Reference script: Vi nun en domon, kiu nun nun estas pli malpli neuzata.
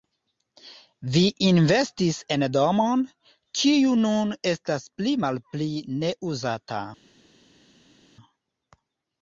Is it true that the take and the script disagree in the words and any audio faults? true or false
true